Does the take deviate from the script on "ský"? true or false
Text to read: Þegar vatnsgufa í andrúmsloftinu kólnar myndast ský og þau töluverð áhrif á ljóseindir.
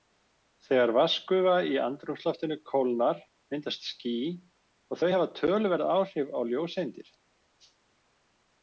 false